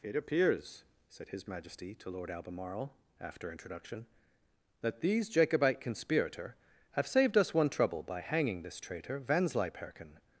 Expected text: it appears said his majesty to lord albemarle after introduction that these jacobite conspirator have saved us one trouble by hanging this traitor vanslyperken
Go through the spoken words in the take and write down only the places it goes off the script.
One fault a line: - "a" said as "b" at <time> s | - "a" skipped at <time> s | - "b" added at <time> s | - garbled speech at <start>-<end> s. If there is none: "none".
none